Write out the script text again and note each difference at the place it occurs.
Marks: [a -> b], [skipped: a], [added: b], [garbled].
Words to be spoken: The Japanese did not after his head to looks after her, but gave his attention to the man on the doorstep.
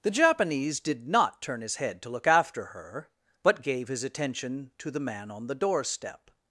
The Japanese did not [after -> turn] his head to [looks -> look] after her, but gave his attention to the man on the doorstep.